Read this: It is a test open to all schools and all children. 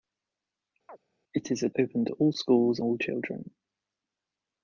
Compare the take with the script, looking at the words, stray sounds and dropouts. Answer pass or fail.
fail